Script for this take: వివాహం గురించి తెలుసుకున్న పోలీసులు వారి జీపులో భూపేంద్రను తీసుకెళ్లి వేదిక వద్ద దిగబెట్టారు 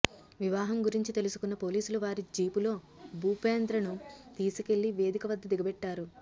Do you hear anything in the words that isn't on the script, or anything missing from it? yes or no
no